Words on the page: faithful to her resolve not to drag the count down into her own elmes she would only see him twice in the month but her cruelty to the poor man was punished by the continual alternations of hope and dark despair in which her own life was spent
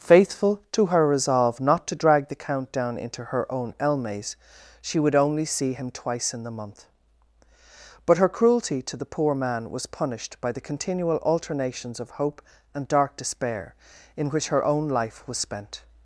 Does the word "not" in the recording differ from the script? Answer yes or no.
no